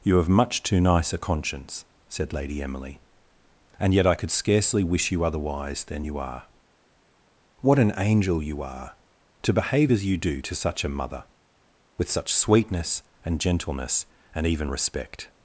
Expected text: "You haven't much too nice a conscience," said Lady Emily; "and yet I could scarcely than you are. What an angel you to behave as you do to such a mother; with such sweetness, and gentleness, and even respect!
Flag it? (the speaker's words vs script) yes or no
yes